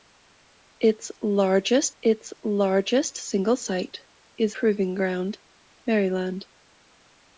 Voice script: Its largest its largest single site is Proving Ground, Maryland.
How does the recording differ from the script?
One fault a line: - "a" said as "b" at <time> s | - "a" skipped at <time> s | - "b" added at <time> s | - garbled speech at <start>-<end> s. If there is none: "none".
none